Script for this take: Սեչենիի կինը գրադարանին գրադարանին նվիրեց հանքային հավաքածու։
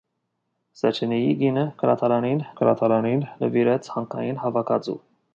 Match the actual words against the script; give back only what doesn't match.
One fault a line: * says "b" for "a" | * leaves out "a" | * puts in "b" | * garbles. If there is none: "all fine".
all fine